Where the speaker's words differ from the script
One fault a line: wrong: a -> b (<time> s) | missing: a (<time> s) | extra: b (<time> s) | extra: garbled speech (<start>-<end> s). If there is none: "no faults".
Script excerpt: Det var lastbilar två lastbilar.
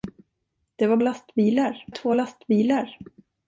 no faults